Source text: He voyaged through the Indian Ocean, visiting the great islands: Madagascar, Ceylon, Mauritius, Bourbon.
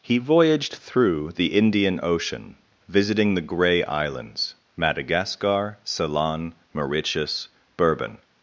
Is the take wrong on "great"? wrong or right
wrong